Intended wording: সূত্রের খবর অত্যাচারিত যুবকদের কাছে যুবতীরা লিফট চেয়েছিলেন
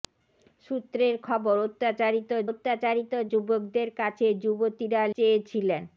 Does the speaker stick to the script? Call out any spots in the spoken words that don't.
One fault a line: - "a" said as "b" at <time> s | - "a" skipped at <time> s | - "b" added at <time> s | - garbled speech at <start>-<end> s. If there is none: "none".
- "অত্যাচারিত" added at 2.5 s
- "লিফট" skipped at 5.0 s